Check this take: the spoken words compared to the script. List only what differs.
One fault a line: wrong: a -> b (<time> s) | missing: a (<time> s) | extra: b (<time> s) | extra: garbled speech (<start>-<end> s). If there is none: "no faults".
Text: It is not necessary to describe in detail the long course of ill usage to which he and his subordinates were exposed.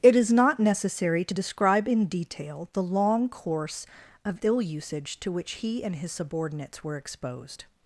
no faults